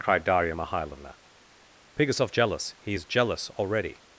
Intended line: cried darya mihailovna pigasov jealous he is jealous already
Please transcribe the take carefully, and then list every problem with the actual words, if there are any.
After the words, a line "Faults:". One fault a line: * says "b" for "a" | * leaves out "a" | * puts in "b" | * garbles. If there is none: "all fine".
cried darya mihailovna pigasov jealous he is jealous already
Faults:
all fine